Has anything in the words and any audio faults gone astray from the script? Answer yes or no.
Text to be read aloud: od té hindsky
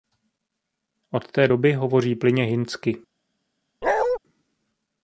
yes